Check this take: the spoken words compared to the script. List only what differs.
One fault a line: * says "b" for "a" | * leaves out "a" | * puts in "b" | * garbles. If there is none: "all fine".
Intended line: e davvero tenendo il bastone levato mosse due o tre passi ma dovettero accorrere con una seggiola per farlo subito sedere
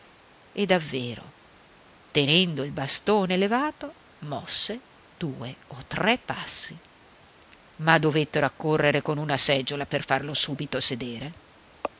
all fine